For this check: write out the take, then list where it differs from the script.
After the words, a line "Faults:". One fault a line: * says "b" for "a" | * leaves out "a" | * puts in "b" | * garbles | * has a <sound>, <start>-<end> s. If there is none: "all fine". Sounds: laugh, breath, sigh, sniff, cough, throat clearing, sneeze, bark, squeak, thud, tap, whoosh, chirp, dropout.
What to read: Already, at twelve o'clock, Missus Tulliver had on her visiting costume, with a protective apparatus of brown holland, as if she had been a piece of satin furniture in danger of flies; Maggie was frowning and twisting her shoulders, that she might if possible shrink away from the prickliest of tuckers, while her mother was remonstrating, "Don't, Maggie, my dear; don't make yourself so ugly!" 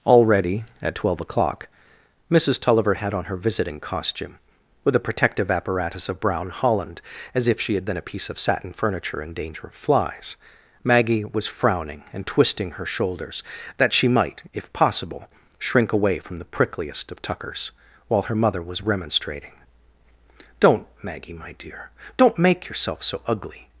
Already, at twelve o'clock, Missus Tulliver had on her visiting costume, with a protective apparatus of brown holland, as if she had been a piece of satin furniture in danger of flies; Maggie was frowning and twisting her shoulders, that she might if possible shrink away from the prickliest of tuckers, while her mother was remonstrating, "Don't, Maggie, my dear; don't make yourself so ugly!"
Faults:
all fine